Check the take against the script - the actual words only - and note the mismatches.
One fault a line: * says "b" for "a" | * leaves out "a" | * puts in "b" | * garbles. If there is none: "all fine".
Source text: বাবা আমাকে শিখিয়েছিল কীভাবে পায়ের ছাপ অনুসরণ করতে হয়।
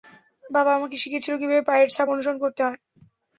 all fine